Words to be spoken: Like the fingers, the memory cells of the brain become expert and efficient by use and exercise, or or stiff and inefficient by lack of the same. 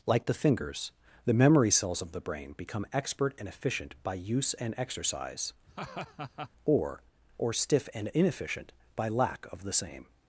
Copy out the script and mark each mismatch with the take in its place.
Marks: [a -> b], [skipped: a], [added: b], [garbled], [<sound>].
Like the fingers, the memory cells of the brain become expert and efficient by use and exercise, [laugh] or or stiff and inefficient by lack of the same.